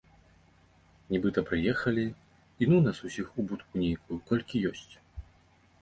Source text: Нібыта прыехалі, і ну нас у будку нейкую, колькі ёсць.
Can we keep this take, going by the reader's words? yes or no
no